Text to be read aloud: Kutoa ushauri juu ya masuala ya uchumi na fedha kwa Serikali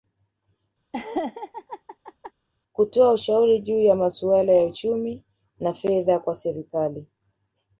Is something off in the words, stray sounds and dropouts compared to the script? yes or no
yes